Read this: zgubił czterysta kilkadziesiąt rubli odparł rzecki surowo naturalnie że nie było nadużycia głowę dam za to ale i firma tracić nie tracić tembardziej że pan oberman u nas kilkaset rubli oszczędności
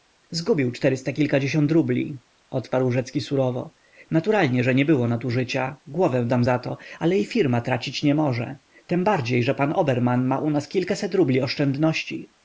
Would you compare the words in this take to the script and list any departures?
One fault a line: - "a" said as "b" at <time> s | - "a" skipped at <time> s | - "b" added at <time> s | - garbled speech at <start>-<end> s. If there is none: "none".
- "tracić" said as "może" at 8.1 s
- "ma" added at 10.3 s